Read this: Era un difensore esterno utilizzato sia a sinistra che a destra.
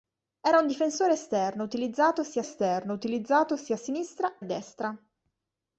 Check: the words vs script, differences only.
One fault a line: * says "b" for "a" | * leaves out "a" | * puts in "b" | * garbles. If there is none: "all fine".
* puts in "esterno utilizzato sia"
* leaves out "che"